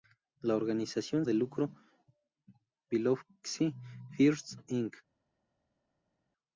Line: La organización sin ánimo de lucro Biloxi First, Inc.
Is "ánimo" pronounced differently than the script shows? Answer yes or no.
yes